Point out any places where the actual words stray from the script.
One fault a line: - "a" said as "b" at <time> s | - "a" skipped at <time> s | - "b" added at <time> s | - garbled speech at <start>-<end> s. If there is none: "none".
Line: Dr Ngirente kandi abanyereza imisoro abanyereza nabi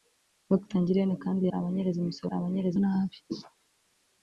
none